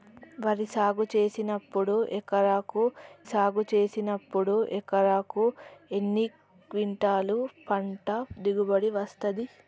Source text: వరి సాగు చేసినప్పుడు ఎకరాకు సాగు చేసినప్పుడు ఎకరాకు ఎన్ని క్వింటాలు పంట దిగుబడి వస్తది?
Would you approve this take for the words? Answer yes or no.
yes